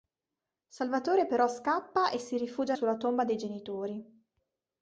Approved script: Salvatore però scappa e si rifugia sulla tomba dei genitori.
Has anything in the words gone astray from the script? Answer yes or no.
no